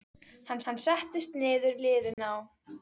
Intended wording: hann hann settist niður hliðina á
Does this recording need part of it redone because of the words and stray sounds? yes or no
yes